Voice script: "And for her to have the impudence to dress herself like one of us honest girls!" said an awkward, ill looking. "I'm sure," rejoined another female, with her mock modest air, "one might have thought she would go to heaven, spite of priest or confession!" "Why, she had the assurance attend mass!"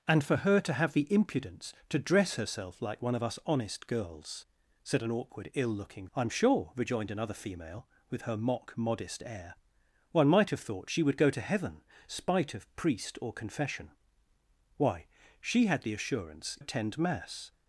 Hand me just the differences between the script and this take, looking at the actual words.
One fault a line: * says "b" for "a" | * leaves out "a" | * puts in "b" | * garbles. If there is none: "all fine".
all fine